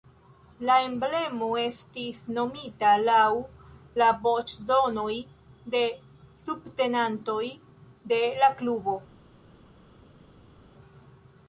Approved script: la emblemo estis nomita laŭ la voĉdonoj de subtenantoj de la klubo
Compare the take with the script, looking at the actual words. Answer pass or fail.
pass